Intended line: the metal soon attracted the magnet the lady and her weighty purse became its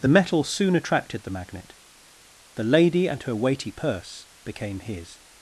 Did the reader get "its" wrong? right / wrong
wrong